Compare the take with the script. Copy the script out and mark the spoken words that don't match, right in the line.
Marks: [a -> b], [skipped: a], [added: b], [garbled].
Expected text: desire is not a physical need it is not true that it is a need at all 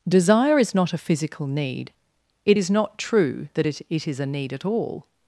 desire is not a physical need it is not true that it [added: it] is a need at all